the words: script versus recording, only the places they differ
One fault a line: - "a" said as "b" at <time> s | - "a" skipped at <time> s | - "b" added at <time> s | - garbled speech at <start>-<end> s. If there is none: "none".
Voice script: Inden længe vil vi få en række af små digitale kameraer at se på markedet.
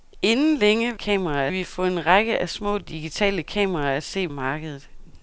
- "vil" said as "kameraer" at 0.9 s
- "på" skipped at 4.3 s